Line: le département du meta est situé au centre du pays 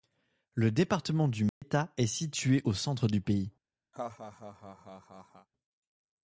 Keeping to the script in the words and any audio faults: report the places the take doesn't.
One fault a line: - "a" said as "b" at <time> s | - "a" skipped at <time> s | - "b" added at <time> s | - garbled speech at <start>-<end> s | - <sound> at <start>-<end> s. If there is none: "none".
- dropout at 1.5-1.6 s
- laugh at 3.9-5.5 s